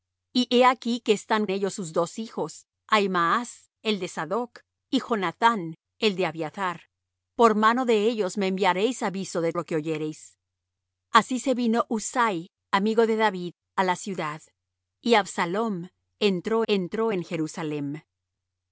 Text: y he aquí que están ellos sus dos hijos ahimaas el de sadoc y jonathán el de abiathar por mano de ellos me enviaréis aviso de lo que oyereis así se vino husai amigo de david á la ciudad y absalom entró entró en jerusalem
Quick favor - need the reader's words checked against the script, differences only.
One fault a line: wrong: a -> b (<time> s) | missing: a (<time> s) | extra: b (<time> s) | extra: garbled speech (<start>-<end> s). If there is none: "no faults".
no faults